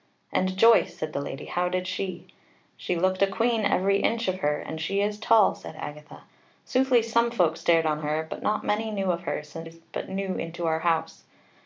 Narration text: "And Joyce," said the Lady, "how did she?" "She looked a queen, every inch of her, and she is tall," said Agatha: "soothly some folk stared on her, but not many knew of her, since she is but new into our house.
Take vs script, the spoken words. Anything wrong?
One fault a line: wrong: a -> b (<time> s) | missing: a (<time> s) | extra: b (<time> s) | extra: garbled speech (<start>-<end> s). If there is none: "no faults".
missing: she (9.7 s)